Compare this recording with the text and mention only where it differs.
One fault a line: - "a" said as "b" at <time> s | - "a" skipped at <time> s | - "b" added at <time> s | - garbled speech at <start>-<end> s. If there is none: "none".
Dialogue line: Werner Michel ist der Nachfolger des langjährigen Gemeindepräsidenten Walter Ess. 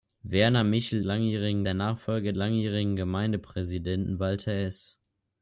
- "ist" said as "langjährigen" at 1.0 s
- "des" skipped at 2.3 s